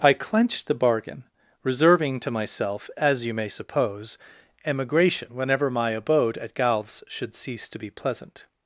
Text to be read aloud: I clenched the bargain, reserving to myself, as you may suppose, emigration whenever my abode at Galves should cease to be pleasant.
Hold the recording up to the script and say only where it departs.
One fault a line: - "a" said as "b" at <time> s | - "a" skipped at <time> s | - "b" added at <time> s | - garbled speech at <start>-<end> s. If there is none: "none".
none